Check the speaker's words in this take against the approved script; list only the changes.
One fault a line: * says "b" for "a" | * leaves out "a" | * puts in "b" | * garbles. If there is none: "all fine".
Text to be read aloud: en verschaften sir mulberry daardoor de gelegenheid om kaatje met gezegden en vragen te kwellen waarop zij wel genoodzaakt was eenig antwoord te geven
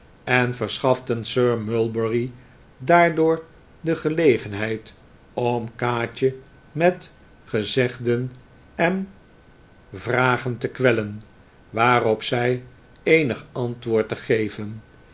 * leaves out "wel genoodzaakt was"